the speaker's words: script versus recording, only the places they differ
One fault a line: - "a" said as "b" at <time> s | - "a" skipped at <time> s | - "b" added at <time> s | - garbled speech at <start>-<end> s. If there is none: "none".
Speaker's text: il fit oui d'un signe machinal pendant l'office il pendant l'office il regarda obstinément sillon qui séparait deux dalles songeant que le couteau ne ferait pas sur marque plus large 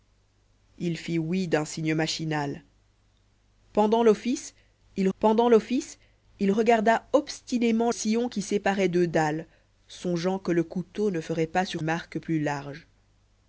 none